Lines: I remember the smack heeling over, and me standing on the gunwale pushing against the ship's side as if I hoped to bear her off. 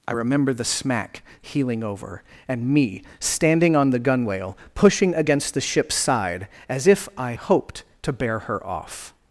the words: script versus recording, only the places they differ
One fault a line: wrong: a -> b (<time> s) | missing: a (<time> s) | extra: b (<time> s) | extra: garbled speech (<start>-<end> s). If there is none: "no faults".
no faults